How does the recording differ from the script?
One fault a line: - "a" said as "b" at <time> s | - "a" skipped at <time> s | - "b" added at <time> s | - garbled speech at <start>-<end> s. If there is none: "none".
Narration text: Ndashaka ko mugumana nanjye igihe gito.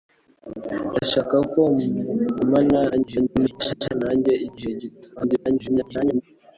- garbled speech at 2.9-3.9 s
- garbled speech at 5.2-6.2 s